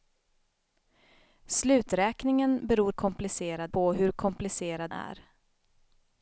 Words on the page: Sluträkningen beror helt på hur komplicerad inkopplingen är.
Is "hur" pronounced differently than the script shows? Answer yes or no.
no